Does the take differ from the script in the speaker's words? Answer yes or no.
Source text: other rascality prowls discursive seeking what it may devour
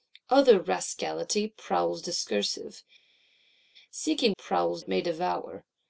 yes